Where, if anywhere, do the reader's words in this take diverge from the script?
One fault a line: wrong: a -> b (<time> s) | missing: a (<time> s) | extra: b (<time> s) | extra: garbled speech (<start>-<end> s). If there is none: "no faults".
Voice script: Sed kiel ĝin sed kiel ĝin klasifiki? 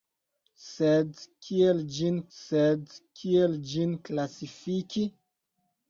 no faults